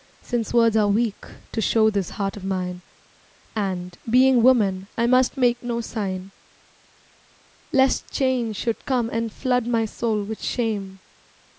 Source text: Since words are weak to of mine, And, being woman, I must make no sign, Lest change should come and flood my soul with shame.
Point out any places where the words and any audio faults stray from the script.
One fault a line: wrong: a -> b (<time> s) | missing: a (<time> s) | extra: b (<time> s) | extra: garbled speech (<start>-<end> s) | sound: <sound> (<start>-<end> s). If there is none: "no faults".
extra: show this heart (1.6 s)